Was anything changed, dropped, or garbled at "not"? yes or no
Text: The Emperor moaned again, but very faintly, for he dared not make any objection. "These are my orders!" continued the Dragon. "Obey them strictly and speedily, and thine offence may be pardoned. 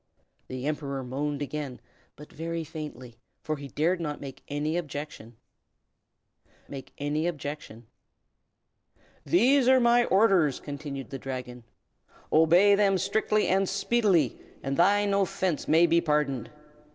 no